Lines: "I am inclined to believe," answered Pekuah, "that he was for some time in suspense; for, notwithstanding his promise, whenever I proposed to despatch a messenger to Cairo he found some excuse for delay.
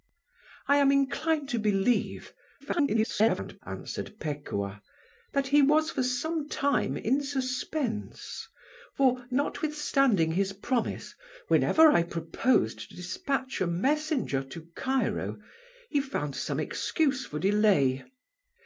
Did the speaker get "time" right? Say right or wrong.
right